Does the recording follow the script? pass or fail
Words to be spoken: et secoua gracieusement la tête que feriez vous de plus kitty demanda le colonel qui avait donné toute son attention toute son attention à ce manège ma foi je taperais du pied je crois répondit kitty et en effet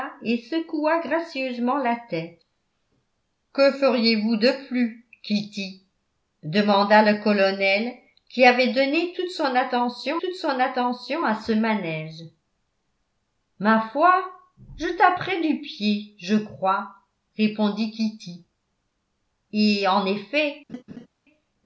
pass